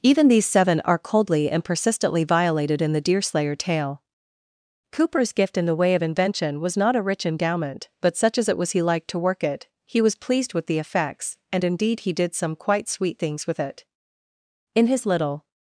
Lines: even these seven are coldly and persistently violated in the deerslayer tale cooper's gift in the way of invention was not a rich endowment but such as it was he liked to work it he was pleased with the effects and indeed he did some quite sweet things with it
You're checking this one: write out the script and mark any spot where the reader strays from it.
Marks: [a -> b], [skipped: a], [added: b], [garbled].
even these seven are coldly and persistently violated in the deerslayer tale cooper's gift in the way of invention was not a rich endowment but such as it was he liked to work it he was pleased with the effects and indeed he did some quite sweet things with it [added: in his little]